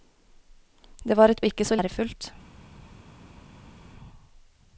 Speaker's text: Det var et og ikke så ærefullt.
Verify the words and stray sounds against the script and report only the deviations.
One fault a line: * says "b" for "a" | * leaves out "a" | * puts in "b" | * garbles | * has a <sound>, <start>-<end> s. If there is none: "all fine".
all fine